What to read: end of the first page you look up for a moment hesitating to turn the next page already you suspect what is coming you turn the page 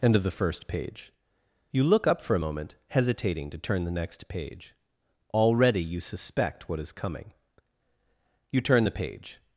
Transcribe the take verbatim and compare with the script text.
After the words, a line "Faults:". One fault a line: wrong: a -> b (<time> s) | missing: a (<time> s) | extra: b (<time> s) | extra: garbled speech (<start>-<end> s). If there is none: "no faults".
end of the first page you look up for a moment hesitating to turn the next page already you suspect what is coming you turn the page
Faults:
no faults